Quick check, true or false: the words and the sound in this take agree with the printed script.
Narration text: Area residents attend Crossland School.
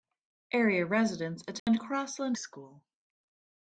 false